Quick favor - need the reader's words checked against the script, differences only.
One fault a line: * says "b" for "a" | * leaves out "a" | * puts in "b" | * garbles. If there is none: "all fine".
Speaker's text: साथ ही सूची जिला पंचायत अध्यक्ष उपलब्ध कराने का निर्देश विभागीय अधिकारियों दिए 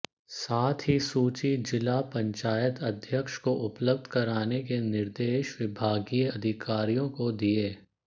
* puts in "को"
* says "के" for "का"
* puts in "को"